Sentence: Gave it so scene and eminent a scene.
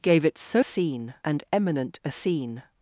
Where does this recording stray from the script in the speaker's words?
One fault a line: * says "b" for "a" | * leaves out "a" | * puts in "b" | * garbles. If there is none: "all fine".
all fine